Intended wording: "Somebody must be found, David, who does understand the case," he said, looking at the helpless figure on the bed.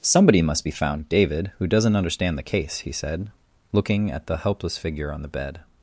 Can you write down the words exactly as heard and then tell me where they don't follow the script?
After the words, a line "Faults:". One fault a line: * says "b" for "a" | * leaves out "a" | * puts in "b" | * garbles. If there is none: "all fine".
"Somebody must be found, David, who doesn't understand the case," he said, looking at the helpless figure on the bed.
Faults:
* says "doesn't" for "does"